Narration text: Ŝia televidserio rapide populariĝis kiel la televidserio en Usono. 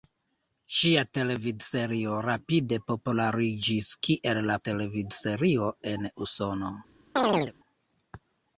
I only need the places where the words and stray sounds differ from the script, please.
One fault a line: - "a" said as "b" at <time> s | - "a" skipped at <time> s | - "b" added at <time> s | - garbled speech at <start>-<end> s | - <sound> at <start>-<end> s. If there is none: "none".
- chirp at 7.2-7.5 s